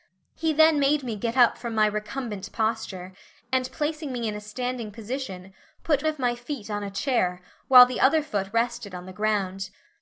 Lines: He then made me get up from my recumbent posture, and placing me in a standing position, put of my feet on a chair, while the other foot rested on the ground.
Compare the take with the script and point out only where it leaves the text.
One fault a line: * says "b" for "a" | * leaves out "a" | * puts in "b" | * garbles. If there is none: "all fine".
all fine